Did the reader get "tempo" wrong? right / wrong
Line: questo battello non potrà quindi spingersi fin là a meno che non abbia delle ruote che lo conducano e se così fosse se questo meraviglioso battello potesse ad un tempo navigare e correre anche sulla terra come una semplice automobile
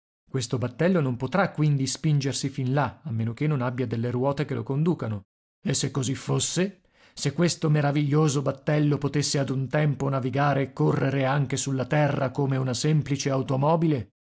right